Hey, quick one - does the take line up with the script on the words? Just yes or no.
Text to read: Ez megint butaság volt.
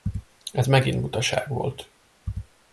yes